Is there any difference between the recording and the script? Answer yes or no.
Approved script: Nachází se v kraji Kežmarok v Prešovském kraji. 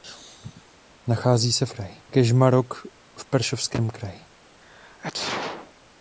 no